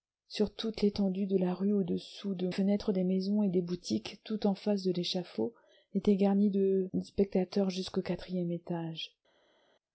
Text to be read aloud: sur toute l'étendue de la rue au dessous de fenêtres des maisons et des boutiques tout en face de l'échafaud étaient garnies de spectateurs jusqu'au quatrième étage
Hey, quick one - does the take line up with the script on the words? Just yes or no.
yes